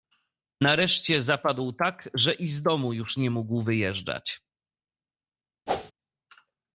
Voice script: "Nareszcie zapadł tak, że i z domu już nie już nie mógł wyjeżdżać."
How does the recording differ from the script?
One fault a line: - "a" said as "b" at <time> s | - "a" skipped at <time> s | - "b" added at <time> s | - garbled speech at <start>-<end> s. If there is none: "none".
- "już nie" skipped at 3.3 s